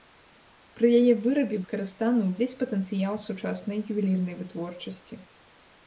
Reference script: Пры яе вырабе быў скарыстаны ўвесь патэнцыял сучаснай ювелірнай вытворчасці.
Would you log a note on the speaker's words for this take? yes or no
yes